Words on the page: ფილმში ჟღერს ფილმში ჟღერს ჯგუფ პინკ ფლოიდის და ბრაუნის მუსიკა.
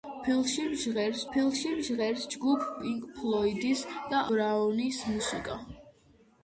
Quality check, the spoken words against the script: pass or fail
pass